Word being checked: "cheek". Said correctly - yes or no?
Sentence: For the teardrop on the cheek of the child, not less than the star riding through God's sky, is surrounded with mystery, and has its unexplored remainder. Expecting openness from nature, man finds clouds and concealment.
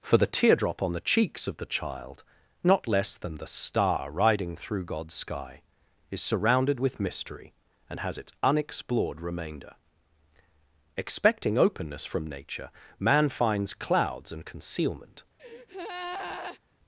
no